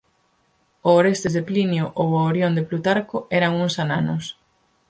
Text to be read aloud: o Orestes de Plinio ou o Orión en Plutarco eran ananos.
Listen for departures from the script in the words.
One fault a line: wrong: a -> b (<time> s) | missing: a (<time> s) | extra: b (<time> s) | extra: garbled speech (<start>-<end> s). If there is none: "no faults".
wrong: en -> de (2.6 s)
extra: uns (3.6 s)